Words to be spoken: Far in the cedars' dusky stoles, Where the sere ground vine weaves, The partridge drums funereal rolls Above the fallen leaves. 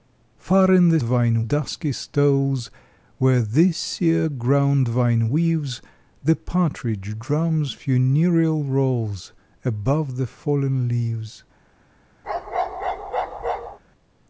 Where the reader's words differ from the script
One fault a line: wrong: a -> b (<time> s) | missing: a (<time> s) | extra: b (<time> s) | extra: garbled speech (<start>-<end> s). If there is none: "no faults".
wrong: cedars -> vine (1.0 s)